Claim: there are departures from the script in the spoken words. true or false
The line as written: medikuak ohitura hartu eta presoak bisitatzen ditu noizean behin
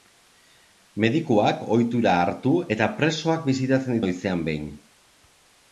true